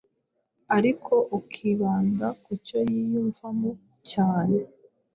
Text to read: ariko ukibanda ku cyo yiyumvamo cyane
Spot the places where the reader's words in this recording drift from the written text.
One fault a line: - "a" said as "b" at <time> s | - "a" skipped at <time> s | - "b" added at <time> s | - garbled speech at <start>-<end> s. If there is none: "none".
none